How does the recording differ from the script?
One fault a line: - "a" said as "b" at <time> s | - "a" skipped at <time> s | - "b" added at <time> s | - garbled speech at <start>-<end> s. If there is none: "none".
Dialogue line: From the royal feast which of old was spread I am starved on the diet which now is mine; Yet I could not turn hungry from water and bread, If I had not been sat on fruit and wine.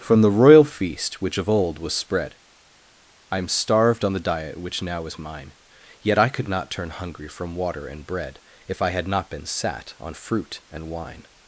none